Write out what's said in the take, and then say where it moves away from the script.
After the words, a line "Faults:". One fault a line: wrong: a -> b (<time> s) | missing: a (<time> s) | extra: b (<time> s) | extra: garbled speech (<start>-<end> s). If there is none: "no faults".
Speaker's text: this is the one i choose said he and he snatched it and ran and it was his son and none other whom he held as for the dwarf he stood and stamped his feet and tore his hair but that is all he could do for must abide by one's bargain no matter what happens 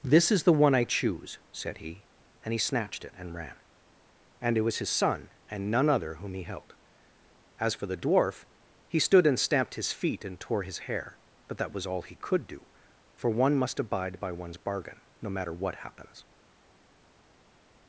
this is the one i choose said he and he snatched it and ran and it was his son and none other whom he held as for the dwarf he stood and stamped his feet and tore his hair but that was all he could do for one must abide by one's bargain no matter what happens
Faults:
wrong: is -> was (11.7 s)
extra: one (13.3 s)